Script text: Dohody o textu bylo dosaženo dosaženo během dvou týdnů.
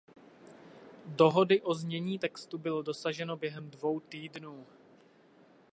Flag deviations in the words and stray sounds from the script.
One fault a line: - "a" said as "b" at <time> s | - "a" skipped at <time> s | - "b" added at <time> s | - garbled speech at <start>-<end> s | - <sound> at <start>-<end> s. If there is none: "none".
- "znění" added at 1.7 s
- "dosaženo" skipped at 3.4 s